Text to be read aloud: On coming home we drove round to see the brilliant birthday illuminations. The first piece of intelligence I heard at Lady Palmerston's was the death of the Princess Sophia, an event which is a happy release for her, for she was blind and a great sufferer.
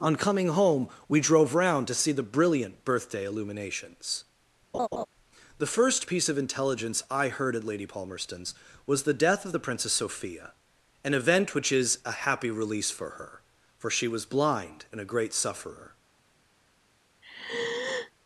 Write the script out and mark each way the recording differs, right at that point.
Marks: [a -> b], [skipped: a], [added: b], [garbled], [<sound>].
On coming home we drove round to see the brilliant birthday illuminations. [laugh] The first piece of intelligence I heard at Lady Palmerston's was the death of the Princess Sophia, an event which is a happy release for her, for she was blind and a great sufferer. [sigh]